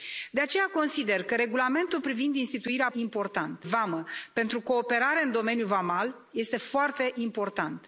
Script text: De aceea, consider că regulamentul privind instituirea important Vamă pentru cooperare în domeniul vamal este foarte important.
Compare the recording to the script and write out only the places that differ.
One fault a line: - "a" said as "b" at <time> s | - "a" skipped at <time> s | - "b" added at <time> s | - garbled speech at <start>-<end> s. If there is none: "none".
none